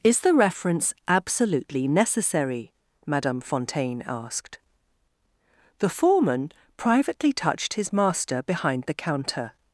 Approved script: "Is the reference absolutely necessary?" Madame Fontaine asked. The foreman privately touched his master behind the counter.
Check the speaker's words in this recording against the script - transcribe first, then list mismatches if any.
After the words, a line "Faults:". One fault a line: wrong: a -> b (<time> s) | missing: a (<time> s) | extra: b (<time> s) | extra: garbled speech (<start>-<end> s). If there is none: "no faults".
"Is the reference absolutely necessary?" Madame Fontaine asked. The foreman privately touched his master behind the counter.
Faults:
no faults